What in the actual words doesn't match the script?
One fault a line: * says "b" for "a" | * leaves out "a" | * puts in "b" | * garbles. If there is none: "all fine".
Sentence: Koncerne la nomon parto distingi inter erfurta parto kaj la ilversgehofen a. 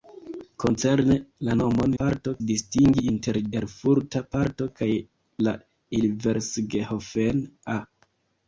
all fine